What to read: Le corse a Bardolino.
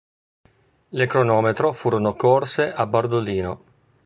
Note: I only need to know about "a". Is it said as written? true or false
true